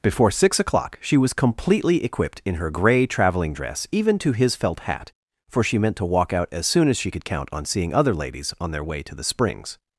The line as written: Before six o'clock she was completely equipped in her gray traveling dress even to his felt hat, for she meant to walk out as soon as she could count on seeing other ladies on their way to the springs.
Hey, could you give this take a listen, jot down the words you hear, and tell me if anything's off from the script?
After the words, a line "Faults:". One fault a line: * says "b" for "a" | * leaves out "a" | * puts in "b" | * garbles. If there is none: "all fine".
Before six o'clock she was completely equipped in her gray traveling dress even to his felt hat, for she meant to walk out as soon as she could count on seeing other ladies on their way to the springs.
Faults:
all fine